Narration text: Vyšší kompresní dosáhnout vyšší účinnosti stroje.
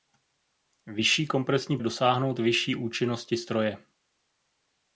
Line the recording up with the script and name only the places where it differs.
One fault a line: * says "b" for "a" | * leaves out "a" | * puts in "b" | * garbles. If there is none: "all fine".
all fine